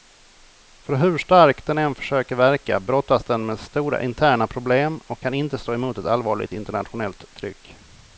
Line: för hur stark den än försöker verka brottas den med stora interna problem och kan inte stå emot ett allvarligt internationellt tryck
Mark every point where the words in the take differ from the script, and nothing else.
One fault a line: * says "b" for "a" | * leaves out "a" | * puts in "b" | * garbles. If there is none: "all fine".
all fine